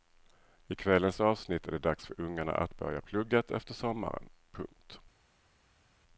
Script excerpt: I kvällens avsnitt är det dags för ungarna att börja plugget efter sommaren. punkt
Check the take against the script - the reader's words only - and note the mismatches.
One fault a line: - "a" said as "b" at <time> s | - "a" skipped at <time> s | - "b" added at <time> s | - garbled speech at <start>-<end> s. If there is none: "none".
none